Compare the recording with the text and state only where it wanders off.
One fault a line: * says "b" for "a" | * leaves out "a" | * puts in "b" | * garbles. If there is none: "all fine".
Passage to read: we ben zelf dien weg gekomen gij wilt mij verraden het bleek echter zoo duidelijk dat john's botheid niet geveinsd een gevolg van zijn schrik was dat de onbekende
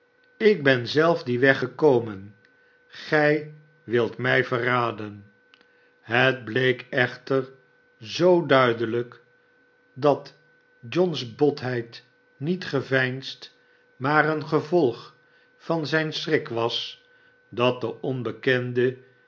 * says "ik" for "we"
* puts in "maar"